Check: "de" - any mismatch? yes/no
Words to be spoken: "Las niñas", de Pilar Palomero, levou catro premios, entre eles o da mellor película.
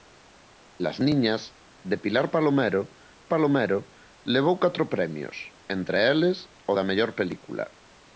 no